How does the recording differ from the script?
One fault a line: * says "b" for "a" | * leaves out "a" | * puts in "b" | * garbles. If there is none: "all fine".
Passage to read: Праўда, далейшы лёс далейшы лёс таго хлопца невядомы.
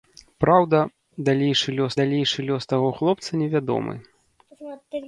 all fine